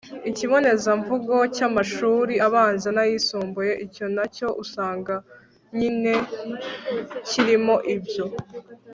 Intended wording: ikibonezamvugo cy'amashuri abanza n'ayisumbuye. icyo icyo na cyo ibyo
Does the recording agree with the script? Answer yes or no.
no